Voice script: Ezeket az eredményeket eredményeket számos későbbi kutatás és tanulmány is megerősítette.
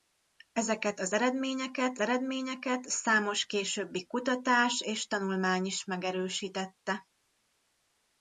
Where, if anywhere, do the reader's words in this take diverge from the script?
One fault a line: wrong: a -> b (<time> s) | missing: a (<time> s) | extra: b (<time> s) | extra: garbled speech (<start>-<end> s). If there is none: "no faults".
no faults